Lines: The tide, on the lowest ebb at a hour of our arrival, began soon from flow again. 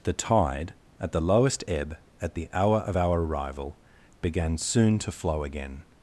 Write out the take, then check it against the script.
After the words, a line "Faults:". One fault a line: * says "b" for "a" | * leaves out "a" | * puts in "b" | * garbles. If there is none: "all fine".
The tide, at the lowest ebb at the hour of our arrival, began soon to flow again.
Faults:
* says "at" for "on"
* says "the" for "a"
* says "to" for "from"